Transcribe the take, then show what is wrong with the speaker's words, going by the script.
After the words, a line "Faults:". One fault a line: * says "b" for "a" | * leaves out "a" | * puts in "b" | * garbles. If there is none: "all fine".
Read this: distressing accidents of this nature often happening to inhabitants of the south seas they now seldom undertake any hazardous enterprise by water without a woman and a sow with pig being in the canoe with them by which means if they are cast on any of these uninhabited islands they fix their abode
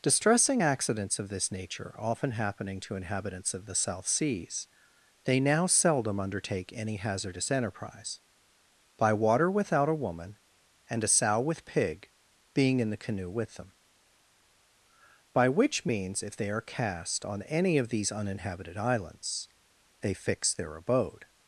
distressing accidents of this nature often happening to inhabitants of the south seas they now seldom undertake any hazardous enterprise by water without a woman and a sow with pig being in the canoe with them by which means if they are cast on any of these uninhabited islands they fix their abode
Faults:
all fine